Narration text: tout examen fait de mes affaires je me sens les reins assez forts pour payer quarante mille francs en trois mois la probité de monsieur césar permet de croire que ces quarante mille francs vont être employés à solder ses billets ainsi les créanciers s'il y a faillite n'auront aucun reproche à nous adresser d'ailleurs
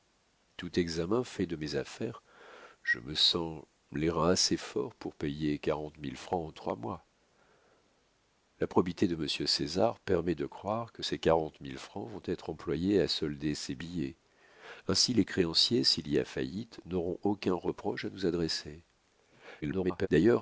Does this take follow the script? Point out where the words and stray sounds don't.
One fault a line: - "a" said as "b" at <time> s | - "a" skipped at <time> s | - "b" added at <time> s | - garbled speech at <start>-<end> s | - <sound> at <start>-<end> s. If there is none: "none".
- garbled speech at 19.6-20.1 s